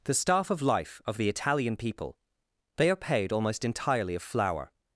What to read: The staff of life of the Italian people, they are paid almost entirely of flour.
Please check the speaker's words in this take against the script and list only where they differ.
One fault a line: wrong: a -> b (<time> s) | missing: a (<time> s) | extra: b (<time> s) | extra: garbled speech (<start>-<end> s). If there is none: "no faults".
no faults